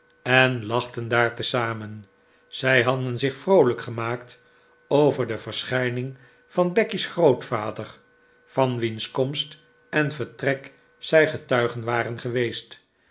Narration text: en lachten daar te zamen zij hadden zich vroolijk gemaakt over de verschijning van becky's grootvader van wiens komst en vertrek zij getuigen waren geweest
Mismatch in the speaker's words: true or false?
false